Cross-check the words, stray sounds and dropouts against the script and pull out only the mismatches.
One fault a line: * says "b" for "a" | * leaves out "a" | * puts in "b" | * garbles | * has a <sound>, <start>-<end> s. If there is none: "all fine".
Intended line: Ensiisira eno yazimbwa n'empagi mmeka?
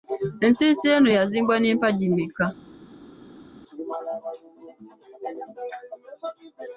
all fine